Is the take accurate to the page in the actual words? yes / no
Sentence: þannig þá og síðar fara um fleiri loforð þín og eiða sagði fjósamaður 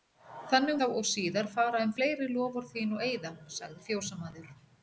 yes